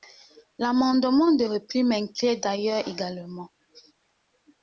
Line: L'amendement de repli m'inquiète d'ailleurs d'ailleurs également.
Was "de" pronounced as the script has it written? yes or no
yes